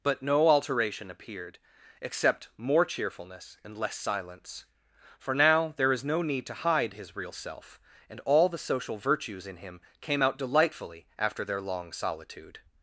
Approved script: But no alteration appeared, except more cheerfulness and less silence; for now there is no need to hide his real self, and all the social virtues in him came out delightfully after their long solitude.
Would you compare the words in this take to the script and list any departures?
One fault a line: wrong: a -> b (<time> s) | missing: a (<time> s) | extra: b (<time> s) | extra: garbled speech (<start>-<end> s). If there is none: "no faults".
no faults